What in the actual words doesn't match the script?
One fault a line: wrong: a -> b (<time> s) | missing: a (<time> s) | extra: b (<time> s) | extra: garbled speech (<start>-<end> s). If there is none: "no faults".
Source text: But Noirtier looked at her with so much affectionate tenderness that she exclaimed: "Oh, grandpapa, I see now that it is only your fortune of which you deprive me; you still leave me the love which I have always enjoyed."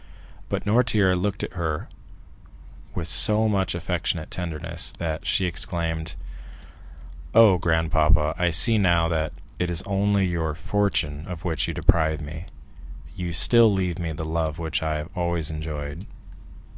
no faults